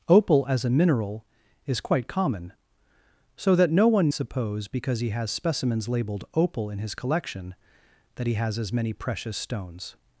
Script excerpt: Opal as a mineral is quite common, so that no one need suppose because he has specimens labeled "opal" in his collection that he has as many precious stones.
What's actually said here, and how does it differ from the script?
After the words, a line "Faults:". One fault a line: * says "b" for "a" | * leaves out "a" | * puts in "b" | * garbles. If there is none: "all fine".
Opal as a mineral is quite common, so that no one suppose because he has specimens labeled "opal" in his collection that he has as many precious stones.
Faults:
* leaves out "need"